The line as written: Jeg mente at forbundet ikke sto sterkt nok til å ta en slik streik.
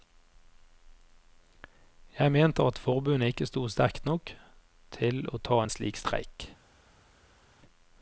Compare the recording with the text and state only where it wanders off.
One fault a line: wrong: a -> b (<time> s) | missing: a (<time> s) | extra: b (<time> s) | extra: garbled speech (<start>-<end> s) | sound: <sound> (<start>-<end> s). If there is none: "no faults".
no faults